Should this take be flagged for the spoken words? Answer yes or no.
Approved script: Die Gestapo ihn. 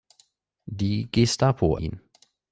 no